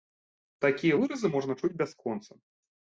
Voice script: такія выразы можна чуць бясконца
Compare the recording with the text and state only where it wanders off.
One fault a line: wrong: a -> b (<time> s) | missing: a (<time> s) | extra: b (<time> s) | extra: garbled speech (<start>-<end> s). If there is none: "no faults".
no faults